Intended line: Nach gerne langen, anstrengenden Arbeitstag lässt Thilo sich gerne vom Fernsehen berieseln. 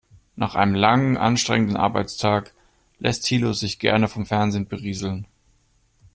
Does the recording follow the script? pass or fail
fail